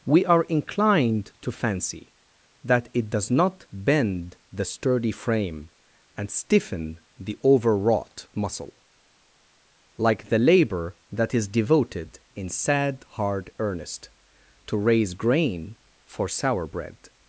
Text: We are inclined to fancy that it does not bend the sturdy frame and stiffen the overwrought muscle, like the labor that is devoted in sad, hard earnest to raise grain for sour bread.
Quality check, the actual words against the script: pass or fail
pass